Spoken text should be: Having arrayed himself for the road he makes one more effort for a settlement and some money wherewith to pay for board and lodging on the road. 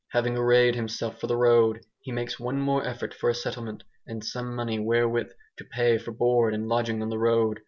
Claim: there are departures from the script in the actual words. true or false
false